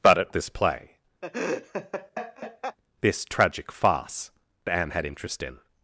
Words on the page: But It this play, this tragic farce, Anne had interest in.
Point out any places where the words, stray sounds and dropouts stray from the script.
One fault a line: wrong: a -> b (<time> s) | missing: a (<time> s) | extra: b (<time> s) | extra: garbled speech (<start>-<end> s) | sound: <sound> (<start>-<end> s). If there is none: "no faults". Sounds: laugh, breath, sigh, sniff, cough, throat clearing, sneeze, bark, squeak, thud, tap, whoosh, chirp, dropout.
sound: laugh (1.2-2.8 s)